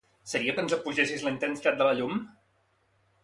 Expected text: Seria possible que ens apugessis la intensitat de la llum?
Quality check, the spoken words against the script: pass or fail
fail